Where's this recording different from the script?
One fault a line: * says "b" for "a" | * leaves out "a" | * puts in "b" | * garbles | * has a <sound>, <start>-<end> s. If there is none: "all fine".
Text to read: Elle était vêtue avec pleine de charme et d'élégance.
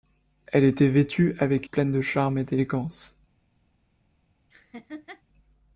* has a laugh, 4.5-5.2 s